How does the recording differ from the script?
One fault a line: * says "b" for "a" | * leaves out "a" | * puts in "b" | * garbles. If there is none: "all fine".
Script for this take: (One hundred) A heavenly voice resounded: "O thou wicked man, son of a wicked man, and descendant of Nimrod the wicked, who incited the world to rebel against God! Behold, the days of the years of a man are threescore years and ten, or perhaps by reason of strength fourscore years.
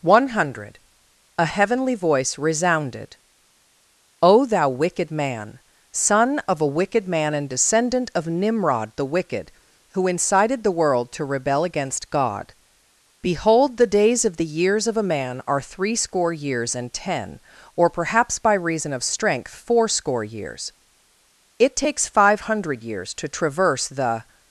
* puts in "It takes five hundred years to traverse the"